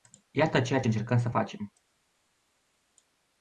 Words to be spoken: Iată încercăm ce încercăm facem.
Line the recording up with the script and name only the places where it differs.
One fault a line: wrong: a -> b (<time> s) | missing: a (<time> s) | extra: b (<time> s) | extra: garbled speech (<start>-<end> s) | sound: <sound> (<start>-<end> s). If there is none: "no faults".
wrong: încercăm -> ceea (0.6 s)
extra: să (1.2 s)